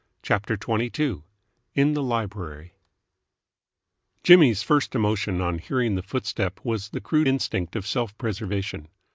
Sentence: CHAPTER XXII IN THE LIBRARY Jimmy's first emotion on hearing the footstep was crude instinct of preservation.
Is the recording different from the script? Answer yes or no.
yes